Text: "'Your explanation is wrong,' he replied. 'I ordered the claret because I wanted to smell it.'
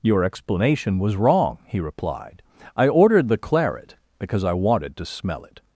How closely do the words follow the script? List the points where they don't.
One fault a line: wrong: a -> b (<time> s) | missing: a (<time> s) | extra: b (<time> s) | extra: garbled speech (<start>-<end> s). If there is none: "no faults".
wrong: is -> was (1.0 s)